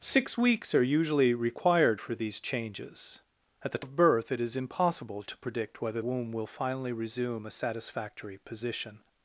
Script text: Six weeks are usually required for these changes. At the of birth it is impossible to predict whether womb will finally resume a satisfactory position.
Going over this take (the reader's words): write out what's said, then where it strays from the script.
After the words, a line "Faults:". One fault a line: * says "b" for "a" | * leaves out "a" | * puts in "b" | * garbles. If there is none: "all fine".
Six weeks are usually required for these changes. At the of birth it is impossible to predict whether womb will finally resume a satisfactory position.
Faults:
all fine